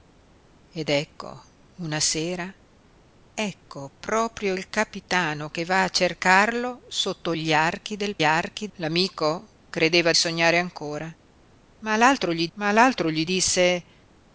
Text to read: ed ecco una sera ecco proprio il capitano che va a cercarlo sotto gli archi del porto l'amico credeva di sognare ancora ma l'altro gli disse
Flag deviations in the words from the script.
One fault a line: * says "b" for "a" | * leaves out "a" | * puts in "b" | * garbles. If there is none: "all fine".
* says "archi" for "porto"
* leaves out "di"
* puts in "ma l'altro gli"